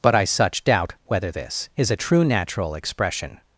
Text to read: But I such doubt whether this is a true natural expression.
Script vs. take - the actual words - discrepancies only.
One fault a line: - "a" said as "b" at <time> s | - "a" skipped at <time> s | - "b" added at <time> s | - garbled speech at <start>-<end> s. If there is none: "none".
none